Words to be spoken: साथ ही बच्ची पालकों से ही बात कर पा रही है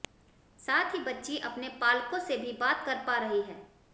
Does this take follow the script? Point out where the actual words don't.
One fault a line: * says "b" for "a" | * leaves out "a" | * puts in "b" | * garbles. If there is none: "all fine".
* puts in "अपने"
* says "भी" for "ही"